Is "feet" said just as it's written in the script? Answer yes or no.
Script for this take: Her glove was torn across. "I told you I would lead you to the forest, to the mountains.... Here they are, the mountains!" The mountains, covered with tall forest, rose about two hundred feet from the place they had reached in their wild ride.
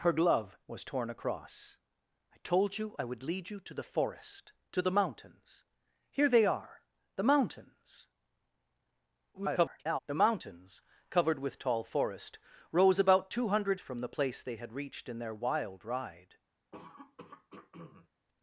no